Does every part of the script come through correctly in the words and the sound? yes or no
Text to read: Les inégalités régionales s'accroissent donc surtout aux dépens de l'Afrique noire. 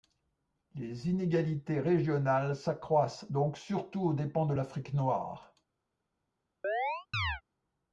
no